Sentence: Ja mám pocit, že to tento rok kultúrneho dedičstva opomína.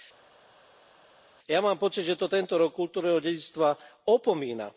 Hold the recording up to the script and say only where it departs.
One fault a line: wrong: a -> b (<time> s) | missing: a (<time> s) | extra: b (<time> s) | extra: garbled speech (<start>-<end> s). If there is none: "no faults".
no faults